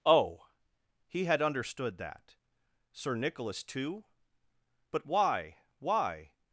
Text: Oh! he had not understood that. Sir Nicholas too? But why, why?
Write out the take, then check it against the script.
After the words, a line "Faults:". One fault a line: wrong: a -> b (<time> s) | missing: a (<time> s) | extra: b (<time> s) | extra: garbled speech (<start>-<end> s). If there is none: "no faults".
Oh! he had understood that. Sir Nicholas too? But why, why?
Faults:
missing: not (1.4 s)